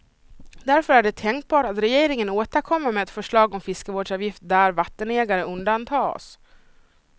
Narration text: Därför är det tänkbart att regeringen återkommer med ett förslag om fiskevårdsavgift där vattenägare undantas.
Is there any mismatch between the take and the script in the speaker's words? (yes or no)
no